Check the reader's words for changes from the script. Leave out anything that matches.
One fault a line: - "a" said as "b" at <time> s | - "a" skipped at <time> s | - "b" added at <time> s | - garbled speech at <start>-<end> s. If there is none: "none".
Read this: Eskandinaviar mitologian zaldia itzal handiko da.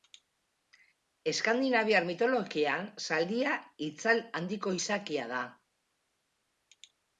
- "izakia" added at 4.8 s